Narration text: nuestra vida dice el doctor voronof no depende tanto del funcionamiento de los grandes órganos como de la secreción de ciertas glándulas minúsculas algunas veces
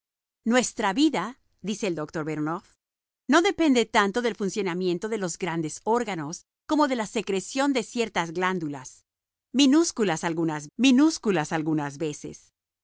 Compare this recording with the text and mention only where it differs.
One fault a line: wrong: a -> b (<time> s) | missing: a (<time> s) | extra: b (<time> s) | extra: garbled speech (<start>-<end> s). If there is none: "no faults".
extra: minúsculas algunas (10.8 s)